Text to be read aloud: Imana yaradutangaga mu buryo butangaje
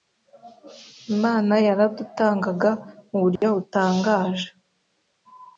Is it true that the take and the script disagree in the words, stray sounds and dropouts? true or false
true